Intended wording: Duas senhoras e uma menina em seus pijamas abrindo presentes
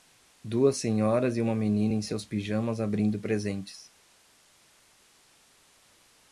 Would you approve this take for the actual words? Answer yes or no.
yes